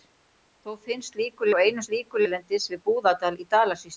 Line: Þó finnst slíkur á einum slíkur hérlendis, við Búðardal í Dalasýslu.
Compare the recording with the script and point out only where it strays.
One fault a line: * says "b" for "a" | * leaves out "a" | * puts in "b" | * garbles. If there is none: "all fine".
all fine